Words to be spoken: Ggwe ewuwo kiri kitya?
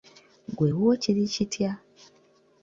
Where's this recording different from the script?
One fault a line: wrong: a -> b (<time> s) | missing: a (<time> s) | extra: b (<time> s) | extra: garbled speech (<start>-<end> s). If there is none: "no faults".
no faults